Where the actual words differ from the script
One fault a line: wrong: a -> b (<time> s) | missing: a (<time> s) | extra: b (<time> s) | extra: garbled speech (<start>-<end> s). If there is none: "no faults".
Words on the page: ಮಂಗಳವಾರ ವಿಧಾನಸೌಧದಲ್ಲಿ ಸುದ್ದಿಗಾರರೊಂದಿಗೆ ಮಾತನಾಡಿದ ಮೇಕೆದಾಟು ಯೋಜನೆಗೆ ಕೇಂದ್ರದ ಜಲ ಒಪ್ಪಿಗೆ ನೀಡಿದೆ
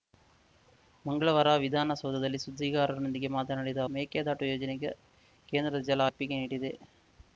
no faults